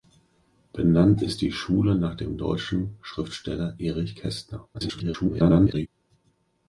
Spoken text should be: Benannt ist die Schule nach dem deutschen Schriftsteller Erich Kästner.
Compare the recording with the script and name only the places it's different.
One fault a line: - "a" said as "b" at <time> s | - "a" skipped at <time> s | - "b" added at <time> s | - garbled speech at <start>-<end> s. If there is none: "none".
- garbled speech at 4.7-5.9 s